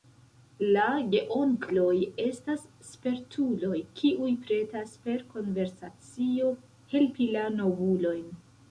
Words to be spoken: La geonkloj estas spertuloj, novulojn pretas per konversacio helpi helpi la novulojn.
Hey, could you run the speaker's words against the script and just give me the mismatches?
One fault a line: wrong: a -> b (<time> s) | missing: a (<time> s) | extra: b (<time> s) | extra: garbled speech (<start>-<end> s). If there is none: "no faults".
wrong: novulojn -> kiuj (4.0 s)
missing: helpi (7.3 s)